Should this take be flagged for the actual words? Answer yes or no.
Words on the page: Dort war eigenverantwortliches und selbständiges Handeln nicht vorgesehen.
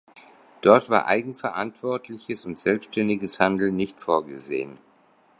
no